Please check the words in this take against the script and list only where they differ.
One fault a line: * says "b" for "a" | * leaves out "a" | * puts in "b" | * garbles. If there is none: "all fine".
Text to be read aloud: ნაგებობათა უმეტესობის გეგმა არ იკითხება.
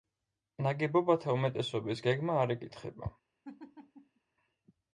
all fine